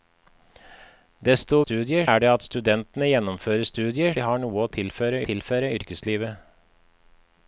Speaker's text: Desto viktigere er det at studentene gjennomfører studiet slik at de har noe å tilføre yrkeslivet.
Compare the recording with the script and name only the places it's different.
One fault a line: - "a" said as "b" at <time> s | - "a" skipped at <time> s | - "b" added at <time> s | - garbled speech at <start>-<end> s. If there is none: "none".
- "viktigere" said as "studiet" at 1.6 s
- "slik at" skipped at 4.2 s
- "tilføre" added at 5.3 s